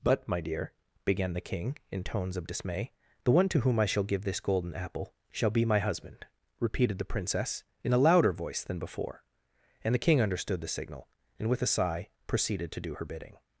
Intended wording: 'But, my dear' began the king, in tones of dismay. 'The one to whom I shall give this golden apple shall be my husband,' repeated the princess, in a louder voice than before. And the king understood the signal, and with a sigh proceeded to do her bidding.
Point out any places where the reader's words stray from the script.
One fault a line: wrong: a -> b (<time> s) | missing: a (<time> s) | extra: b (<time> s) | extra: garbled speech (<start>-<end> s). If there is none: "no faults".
no faults